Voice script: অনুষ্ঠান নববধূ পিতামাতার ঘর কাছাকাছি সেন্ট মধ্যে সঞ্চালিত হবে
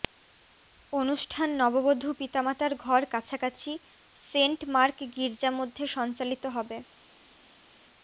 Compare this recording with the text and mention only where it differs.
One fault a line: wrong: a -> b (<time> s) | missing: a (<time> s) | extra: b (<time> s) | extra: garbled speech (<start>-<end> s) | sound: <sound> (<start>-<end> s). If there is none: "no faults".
extra: মার্ক গির্জা (4.7 s)